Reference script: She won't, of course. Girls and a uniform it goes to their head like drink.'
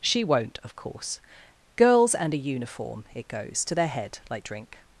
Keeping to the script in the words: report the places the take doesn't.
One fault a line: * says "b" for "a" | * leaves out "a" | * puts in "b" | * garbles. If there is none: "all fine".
all fine